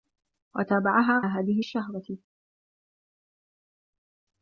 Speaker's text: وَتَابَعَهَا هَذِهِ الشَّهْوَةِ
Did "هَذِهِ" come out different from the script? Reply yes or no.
no